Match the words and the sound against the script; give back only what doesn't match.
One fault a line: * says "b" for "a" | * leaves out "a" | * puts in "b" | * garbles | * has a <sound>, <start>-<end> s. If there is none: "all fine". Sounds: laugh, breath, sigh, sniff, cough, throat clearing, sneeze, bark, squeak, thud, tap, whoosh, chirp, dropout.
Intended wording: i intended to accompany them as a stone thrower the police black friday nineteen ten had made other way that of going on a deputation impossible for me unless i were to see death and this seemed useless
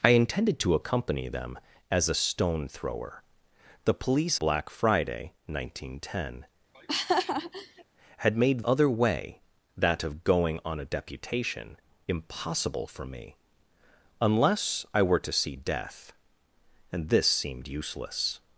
* has a laugh, 6.7-7.8 s